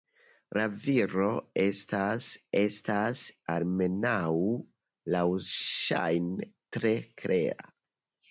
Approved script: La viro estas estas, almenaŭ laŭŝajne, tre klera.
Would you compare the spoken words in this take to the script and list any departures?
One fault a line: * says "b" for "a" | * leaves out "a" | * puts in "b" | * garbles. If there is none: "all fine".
all fine